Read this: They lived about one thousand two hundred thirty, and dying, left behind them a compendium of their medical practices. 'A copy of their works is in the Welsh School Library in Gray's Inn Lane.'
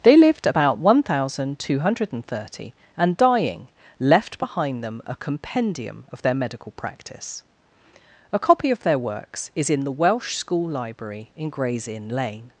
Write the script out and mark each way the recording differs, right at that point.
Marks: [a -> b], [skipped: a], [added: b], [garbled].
They lived about one thousand two hundred thirty, and dying, left behind them a compendium of their medical [practices. -> practice] 'A copy of their works is in the Welsh School Library in Gray's Inn Lane.'